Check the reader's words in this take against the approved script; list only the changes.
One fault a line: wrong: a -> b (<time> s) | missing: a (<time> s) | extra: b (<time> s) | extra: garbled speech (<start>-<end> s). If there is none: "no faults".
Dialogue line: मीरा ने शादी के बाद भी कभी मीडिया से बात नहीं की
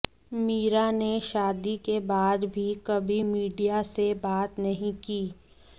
no faults